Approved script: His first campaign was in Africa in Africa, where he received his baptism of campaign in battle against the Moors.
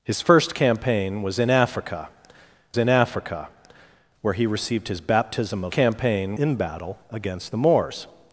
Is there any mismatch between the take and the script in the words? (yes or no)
no